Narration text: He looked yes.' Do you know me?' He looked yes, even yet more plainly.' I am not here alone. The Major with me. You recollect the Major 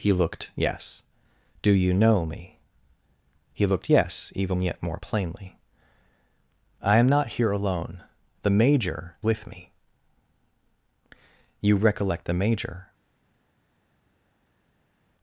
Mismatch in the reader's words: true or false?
false